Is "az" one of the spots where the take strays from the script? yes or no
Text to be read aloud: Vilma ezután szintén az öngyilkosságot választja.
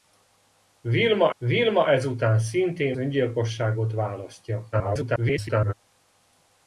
yes